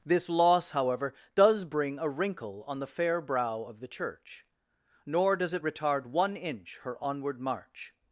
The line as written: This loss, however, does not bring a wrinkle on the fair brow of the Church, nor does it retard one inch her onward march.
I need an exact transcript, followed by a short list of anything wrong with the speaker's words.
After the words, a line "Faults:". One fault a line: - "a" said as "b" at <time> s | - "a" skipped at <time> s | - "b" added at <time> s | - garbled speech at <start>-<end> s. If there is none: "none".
This loss, however, does bring a wrinkle on the fair brow of the Church, nor does it retard one inch her onward march.
Faults:
- "not" skipped at 1.6 s